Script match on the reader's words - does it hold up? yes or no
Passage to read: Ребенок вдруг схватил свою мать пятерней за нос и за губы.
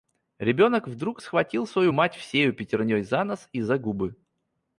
no